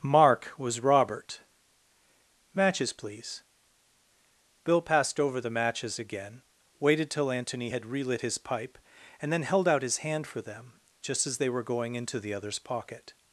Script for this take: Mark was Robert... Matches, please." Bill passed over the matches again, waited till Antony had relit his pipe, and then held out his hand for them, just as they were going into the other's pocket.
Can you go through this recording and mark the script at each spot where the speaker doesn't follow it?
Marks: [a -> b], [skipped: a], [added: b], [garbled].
Mark was Robert... Matches, please." Bill passed over the matches again, waited till Antony had relit his pipe, and then held out his hand for them, just as they were going into the other's pocket.